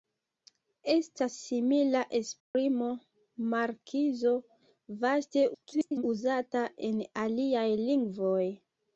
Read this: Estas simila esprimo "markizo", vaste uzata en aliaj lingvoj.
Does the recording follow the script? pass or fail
fail